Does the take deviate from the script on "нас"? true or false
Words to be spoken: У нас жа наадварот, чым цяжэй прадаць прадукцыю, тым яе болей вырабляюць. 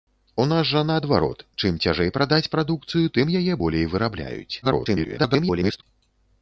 false